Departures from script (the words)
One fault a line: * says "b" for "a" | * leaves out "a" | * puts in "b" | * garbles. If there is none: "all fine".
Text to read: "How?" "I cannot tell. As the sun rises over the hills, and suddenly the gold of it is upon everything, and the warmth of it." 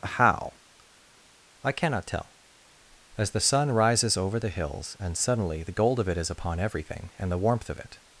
all fine